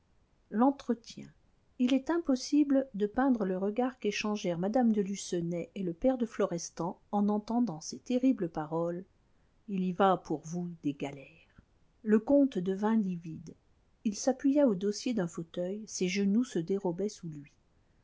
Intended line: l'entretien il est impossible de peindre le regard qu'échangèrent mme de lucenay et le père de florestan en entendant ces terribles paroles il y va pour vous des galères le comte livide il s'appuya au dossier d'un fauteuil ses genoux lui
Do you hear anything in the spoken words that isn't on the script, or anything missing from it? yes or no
yes